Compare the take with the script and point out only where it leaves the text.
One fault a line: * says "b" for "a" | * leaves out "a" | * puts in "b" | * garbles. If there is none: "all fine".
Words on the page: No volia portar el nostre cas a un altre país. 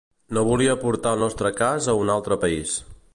all fine